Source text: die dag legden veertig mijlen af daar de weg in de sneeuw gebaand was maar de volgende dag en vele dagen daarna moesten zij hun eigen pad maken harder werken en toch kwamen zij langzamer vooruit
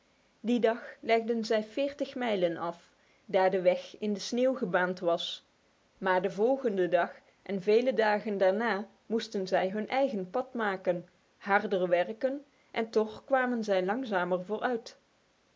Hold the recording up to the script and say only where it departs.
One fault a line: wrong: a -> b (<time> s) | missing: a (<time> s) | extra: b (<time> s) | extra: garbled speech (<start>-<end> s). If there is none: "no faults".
extra: zij (1.4 s)